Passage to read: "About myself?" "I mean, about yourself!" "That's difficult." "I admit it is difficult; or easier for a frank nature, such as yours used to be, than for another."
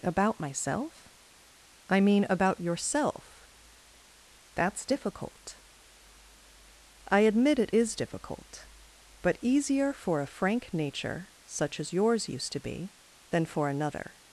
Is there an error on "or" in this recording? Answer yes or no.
yes